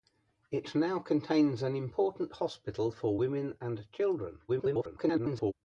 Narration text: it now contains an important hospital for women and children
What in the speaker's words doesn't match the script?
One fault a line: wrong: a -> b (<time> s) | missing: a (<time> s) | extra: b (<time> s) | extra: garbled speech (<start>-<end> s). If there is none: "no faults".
extra: garbled speech (4.5-5.5 s)